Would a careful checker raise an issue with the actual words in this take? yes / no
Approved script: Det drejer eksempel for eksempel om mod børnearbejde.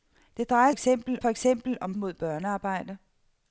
no